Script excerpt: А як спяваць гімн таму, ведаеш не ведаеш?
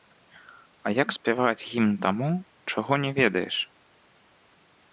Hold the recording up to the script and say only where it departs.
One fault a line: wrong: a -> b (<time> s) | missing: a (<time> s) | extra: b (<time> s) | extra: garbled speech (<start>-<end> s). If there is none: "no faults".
wrong: ведаеш -> чаго (2.7 s)